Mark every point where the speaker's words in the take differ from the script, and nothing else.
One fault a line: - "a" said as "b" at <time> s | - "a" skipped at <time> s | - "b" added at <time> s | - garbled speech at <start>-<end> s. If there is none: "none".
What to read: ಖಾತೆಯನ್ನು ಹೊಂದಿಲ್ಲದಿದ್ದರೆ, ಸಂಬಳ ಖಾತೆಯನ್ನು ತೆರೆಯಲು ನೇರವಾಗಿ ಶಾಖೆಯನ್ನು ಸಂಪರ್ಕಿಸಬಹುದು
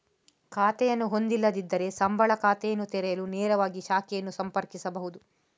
none